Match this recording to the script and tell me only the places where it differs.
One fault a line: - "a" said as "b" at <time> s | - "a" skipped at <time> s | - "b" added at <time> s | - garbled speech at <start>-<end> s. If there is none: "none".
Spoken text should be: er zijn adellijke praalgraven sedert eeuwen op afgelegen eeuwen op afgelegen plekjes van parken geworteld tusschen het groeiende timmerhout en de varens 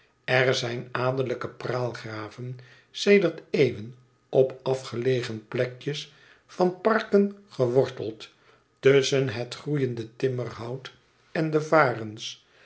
- "eeuwen op afgelegen" skipped at 5.5 s